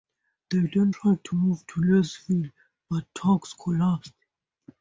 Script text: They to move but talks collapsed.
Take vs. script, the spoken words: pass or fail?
fail